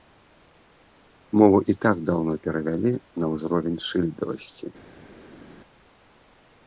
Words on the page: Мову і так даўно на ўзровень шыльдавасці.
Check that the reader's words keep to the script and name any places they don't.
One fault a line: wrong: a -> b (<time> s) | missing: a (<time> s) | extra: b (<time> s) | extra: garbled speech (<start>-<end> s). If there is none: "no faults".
extra: перавялі (2.5 s)